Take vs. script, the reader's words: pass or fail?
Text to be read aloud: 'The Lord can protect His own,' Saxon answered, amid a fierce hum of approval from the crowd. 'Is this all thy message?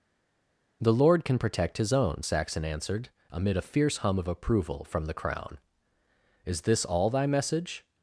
fail